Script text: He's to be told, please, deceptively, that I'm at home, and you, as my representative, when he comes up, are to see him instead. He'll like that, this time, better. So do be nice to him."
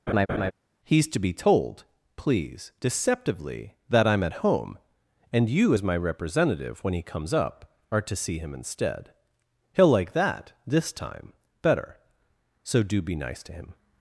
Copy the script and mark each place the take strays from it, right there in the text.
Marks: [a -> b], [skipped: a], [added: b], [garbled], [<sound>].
[laugh] He's to be told, please, deceptively, that I'm at home, and you, as my representative, when he comes up, are to see him instead. He'll like that, this time, better. So do be nice to him."